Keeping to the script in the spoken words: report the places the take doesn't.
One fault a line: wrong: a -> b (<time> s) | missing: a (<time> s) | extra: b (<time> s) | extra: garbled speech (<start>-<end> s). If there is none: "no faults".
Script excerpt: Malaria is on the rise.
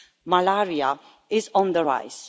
no faults